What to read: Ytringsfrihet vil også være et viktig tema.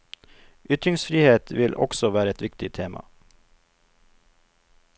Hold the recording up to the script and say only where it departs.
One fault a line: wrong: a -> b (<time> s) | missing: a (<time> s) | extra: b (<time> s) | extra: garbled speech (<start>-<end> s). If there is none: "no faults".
no faults